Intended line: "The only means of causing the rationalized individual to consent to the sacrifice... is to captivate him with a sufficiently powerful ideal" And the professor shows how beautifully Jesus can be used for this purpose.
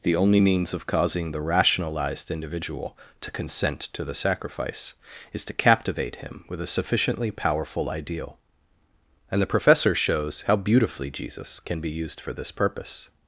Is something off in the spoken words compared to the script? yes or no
no